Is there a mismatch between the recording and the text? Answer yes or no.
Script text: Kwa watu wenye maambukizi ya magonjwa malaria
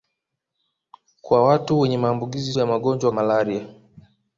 no